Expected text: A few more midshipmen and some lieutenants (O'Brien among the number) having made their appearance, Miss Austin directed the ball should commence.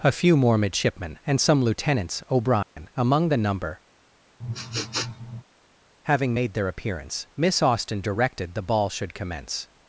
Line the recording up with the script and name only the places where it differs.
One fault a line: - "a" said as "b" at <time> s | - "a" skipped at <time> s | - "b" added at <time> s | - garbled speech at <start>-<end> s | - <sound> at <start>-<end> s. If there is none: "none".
- dropout at 2.6-2.8 s
- sniff at 4.4-5.4 s